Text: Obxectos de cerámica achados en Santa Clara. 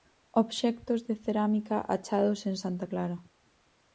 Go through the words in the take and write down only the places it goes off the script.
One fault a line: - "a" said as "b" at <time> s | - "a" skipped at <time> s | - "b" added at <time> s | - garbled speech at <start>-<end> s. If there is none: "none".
none